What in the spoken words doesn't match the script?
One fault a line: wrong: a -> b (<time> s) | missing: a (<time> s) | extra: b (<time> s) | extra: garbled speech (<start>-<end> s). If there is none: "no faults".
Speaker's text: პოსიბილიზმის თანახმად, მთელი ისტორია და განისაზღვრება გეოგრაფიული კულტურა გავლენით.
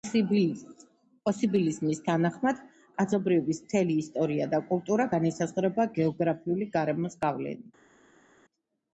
extra: კაცობრიობის (3.0 s)
extra: კულტურა (4.7 s)
wrong: კულტურა -> გარემოს (6.8 s)